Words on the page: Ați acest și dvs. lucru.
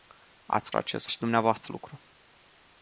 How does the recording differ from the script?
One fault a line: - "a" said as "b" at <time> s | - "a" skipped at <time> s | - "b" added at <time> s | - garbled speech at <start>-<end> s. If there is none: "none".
none